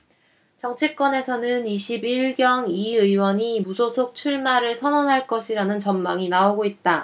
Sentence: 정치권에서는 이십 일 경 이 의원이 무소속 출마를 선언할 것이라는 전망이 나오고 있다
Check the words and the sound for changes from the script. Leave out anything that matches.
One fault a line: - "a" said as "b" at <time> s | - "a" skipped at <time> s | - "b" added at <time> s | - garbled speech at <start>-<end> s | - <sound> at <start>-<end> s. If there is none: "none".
none